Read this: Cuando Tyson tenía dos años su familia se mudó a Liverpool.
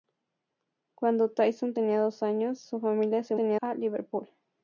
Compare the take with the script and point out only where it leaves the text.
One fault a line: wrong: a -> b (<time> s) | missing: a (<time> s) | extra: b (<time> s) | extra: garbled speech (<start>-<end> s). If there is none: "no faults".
wrong: mudó -> tenía (3.3 s)